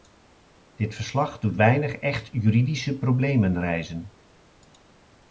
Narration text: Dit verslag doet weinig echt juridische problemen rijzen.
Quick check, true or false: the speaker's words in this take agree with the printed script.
true